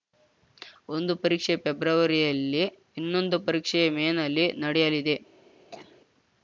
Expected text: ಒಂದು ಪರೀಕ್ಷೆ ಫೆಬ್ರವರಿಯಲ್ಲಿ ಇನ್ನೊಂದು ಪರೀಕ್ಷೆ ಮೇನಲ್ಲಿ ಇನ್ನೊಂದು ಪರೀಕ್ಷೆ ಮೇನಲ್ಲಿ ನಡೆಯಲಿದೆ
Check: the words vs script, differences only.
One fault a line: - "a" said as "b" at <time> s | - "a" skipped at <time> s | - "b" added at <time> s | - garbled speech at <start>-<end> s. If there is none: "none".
- "ಇನ್ನೊಂದು ಪರೀಕ್ಷೆ ಮೇನಲ್ಲಿ" skipped at 4.5 s